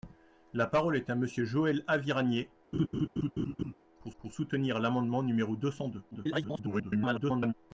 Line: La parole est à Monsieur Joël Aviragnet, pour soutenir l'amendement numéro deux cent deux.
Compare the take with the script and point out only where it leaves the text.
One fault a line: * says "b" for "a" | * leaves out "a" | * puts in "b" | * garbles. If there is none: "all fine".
* puts in "pour"
* garbles